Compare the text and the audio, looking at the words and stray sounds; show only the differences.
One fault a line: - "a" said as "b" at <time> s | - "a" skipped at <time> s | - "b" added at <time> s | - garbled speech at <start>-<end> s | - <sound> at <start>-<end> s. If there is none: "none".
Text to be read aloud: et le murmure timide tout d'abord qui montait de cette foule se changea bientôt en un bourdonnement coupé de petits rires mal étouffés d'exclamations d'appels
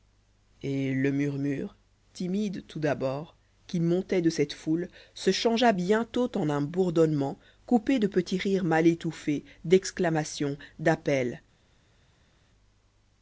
none